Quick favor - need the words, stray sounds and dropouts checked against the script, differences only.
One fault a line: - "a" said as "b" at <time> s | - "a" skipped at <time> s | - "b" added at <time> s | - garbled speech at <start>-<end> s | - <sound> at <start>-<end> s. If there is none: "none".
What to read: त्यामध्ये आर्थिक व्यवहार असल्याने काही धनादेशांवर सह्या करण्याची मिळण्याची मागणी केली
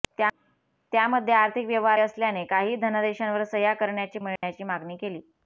- dropout at 4.4-4.4 s